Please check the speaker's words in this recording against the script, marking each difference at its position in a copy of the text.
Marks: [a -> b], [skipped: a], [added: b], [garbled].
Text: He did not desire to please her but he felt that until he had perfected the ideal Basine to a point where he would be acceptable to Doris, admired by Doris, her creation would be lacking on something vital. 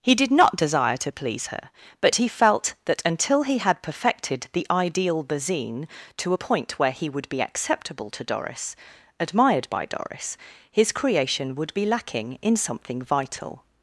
He did not desire to please her but he felt that until he had perfected the ideal Basine to a point where he would be acceptable to Doris, admired by Doris, [her -> his] creation would be lacking [on -> in] something vital.